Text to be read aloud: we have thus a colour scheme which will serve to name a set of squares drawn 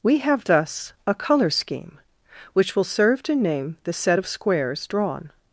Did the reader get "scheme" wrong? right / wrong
right